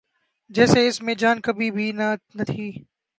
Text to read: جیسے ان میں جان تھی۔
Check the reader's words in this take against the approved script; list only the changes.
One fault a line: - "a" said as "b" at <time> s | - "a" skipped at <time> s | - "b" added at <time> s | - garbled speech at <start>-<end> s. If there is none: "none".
- "ان" said as "اس" at 0.9 s
- "کبھی بھی نہ" added at 1.4 s